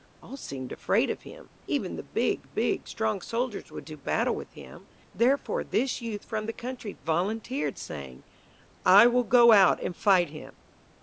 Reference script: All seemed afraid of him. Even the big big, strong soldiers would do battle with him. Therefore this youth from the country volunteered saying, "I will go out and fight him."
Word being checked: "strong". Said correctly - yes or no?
yes